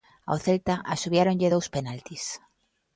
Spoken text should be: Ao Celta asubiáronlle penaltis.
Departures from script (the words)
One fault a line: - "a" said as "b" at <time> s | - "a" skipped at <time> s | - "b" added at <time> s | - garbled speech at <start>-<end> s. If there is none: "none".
- "dous" added at 1.5 s